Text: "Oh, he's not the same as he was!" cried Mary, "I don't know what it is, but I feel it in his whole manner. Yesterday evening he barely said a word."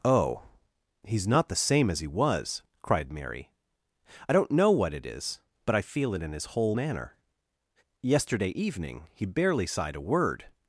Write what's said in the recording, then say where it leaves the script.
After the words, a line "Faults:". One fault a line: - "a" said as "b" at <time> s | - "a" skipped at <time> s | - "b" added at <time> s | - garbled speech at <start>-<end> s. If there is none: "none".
"Oh, he's not the same as he was!" cried Mary, "I don't know what it is, but I feel it in his whole manner. Yesterday evening he barely sighed a word."
Faults:
- "said" said as "sighed" at 9.7 s